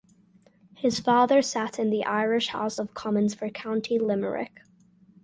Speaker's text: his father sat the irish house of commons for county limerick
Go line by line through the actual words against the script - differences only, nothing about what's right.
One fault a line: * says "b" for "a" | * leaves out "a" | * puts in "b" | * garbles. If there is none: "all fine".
* puts in "in"